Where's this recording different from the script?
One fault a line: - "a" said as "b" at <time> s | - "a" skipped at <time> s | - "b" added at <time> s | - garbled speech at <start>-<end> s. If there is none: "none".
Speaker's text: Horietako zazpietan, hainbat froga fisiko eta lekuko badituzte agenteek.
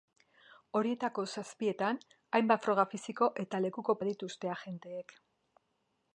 none